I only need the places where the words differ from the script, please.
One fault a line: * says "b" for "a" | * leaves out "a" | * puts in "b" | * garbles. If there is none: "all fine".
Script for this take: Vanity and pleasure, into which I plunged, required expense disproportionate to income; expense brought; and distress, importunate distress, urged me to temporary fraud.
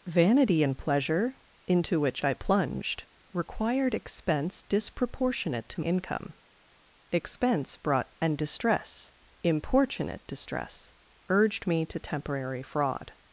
all fine